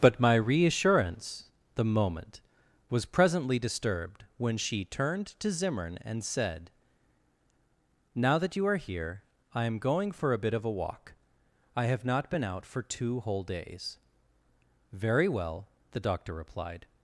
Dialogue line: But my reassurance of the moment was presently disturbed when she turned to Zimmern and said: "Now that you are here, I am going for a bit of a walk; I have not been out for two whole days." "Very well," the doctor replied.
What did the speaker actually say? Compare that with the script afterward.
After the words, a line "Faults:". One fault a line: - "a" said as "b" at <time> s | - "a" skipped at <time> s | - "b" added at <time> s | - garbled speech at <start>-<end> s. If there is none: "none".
But my reassurance the moment was presently disturbed when she turned to Zimmern and said: "Now that you are here, I am going for a bit of a walk; I have not been out for two whole days." "Very well," the doctor replied.
Faults:
- "of" skipped at 1.5 s